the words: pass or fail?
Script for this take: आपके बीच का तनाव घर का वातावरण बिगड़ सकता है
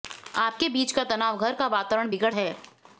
fail